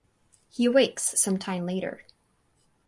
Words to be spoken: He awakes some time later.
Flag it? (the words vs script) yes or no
no